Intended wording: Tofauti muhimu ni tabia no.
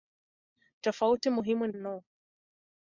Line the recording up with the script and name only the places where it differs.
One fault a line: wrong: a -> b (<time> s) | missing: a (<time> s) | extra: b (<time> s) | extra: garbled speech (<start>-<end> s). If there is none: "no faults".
missing: tabia (1.7 s)